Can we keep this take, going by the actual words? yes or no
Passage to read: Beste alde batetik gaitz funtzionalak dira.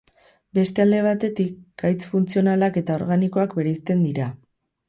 no